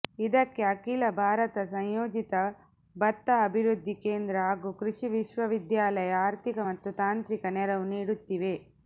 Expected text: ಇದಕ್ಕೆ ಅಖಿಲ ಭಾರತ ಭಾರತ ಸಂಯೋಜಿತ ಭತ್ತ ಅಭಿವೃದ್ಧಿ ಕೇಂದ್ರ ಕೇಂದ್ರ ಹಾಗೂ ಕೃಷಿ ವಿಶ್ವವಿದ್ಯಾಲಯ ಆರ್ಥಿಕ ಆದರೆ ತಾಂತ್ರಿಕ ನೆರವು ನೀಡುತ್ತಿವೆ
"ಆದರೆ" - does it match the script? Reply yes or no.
no